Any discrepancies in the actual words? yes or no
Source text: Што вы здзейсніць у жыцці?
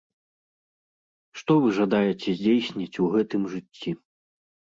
yes